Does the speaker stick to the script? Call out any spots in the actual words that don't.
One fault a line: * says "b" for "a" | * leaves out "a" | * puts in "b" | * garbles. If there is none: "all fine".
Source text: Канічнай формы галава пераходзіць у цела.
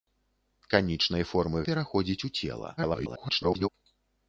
* leaves out "галава"
* garbles